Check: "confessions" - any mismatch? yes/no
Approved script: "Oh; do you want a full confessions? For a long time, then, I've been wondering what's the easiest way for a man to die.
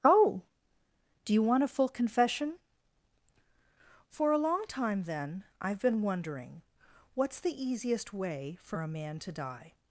yes